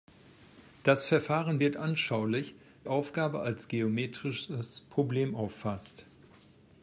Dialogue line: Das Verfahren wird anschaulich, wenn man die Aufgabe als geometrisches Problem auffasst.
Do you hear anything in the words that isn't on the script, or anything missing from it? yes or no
yes